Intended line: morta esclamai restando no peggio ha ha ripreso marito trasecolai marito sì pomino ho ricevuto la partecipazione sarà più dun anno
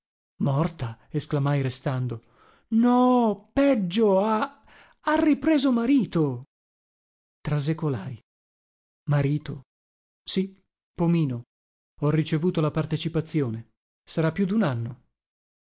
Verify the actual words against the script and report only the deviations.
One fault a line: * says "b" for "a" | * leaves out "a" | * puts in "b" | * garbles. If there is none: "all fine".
all fine